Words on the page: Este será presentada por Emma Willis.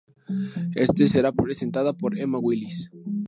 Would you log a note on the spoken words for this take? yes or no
no